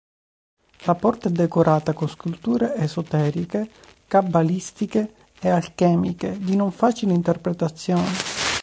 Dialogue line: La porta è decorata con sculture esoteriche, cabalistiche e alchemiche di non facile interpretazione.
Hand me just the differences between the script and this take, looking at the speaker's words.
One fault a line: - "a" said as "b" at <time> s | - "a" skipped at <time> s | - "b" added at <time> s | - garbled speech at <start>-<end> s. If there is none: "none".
none